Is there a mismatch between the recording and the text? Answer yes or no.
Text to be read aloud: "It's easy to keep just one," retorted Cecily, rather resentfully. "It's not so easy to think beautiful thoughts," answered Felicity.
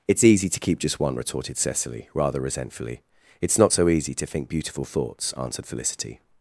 no